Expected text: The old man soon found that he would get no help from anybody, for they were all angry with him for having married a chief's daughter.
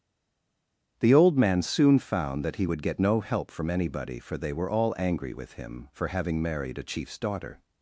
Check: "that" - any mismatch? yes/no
no